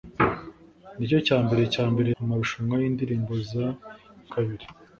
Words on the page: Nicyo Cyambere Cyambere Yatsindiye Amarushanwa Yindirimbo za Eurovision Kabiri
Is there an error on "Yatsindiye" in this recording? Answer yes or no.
yes